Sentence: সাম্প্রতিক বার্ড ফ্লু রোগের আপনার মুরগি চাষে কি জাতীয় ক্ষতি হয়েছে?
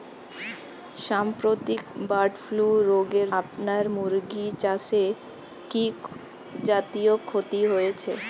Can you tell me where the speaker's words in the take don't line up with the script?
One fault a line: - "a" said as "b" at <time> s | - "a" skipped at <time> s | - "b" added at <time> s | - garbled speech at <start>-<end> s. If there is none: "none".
none